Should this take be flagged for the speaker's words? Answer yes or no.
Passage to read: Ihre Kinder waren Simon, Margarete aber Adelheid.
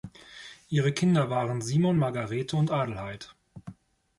yes